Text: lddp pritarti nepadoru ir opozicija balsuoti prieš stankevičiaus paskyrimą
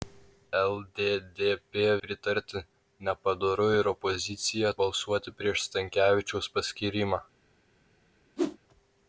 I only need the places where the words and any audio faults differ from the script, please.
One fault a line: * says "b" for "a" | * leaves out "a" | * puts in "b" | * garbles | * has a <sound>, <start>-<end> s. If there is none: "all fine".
* has a whoosh, 8.4-8.6 s